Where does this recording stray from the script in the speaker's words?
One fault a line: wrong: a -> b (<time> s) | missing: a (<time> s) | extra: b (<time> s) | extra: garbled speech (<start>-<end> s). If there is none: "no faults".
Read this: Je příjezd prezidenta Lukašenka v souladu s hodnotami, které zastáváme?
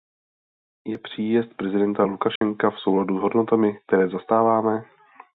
no faults